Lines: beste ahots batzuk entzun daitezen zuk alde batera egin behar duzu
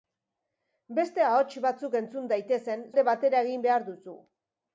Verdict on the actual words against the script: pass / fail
fail